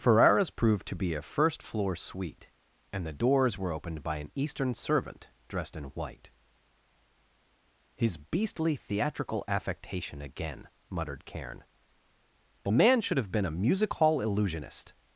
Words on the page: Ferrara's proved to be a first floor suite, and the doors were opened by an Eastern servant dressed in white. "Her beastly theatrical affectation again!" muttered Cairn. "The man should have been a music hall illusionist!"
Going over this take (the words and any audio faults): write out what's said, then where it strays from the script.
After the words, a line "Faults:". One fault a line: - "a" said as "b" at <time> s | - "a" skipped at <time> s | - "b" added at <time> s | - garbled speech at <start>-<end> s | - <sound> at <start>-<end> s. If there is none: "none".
Ferrara's proved to be a first floor suite, and the doors were opened by an Eastern servant dressed in white. "His beastly theatrical affectation again!" muttered Cairn. "The man should have been a music hall illusionist!"
Faults:
- "Her" said as "His" at 7.9 s